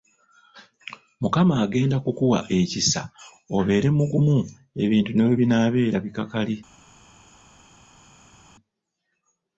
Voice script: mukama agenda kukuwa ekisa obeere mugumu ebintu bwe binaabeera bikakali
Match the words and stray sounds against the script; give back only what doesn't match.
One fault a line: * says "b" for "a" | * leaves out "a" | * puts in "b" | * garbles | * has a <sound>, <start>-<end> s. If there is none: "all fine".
* puts in "ne"